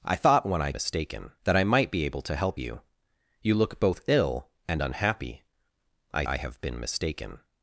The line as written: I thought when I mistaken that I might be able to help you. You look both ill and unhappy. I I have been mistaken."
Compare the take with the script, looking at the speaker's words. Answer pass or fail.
pass